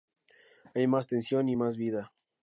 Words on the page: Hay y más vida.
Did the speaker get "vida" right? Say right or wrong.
right